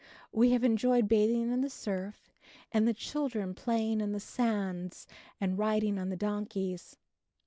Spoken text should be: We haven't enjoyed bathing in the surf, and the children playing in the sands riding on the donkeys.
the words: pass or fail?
fail